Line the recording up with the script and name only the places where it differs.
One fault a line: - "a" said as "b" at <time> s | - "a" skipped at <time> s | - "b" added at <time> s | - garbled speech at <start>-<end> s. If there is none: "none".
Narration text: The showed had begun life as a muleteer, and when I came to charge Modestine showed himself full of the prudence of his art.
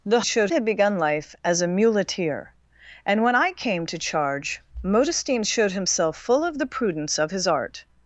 none